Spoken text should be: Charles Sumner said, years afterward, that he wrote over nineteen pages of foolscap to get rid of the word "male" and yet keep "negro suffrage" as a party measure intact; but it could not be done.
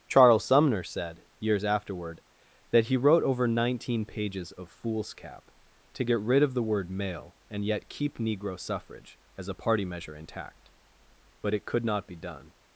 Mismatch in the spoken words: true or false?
false